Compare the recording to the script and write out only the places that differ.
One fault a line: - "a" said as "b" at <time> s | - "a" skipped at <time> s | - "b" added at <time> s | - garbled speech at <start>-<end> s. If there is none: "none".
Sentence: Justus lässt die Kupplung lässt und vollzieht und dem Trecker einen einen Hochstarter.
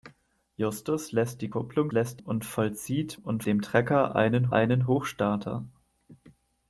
none